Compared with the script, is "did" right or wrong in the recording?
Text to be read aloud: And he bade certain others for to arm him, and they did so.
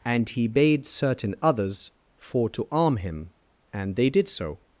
right